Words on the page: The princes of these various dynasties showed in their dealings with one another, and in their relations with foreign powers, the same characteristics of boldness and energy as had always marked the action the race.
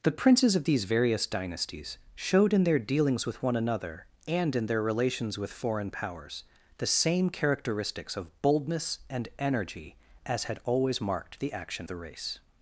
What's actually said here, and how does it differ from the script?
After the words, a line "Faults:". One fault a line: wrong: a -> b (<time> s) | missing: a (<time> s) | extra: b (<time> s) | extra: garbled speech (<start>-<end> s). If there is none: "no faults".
The princes of these various dynasties showed in their dealings with one another, and in their relations with foreign powers, the same characteristics of boldness and energy as had always marked the action the race.
Faults:
no faults